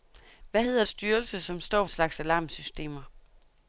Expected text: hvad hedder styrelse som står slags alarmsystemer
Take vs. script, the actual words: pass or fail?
pass